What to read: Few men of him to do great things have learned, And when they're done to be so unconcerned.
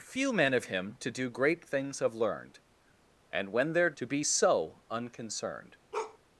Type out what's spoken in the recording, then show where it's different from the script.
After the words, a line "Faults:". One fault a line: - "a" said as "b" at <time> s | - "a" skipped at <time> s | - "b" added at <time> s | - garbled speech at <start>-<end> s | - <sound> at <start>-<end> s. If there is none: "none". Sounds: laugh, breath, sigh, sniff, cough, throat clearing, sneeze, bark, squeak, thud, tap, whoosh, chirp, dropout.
Few men of him to do great things have learned, And when they're to be so unconcerned.
Faults:
- "done" skipped at 3.9 s
- bark at 5.9-6.2 s